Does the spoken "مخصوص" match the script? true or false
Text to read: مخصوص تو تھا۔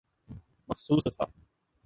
true